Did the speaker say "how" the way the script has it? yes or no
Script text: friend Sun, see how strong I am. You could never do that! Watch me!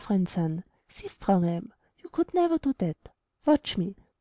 no